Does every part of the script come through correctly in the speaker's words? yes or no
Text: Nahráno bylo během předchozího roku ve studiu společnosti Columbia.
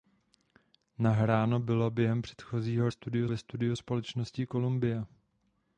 no